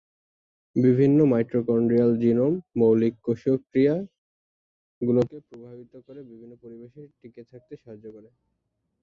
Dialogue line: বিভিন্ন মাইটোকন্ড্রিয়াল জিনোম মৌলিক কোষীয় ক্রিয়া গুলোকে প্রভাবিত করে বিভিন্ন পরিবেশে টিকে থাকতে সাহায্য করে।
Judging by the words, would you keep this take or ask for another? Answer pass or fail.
pass